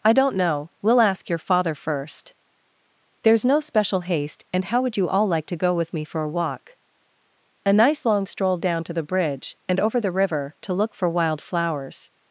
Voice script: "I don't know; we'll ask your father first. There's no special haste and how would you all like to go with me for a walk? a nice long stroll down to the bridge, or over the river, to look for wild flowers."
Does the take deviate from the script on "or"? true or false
true